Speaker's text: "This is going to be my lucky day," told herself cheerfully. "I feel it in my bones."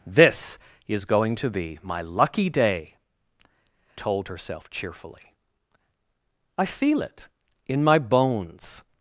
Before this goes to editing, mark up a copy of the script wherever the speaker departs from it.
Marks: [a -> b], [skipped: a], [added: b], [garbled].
"This is going to be my lucky day," told herself cheerfully. "I feel it in my bones."